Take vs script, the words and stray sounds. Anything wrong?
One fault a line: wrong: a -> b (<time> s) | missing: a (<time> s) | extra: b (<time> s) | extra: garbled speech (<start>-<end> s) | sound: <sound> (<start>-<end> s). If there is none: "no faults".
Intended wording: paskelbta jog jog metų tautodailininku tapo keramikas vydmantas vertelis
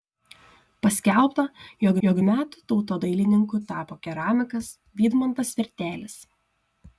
no faults